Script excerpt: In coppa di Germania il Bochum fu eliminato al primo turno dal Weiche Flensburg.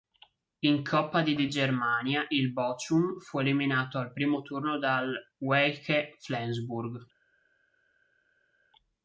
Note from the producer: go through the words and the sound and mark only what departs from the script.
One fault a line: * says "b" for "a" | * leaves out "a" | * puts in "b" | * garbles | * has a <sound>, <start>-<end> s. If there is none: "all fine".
* puts in "di"